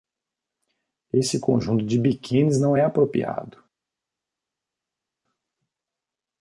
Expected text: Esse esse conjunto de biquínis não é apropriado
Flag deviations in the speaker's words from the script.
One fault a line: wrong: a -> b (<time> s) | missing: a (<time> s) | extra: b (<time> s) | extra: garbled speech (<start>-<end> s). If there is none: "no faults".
missing: esse (1.4 s)